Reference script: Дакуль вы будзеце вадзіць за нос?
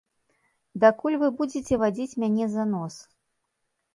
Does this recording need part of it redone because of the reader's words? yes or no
yes